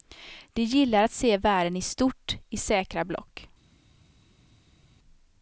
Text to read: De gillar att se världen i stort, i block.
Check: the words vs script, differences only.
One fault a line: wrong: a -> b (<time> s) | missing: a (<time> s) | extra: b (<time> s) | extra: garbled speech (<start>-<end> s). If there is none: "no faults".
extra: säkra (2.6 s)